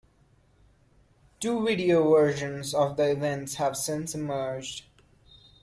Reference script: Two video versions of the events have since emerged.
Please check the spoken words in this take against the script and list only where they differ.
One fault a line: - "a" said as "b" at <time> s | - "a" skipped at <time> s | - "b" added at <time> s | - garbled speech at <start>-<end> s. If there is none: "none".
none